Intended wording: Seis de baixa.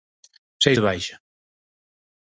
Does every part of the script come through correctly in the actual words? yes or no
yes